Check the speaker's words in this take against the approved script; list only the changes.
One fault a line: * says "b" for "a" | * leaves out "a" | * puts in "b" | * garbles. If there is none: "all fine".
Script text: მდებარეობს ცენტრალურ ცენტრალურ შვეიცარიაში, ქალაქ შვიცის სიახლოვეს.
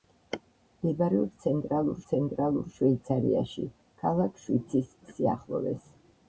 all fine